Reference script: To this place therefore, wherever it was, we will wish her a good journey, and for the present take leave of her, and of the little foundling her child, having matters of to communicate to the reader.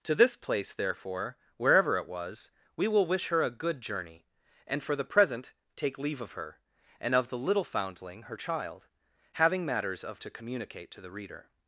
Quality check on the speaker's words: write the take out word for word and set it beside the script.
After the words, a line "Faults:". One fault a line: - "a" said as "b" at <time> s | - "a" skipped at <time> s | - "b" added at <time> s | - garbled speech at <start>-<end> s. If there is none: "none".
To this place therefore, wherever it was, we will wish her a good journey, and for the present take leave of her, and of the little foundling her child, having matters of to communicate to the reader.
Faults:
none